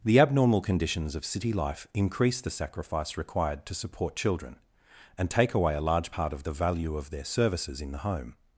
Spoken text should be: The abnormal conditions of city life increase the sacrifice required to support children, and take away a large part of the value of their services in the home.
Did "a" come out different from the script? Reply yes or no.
no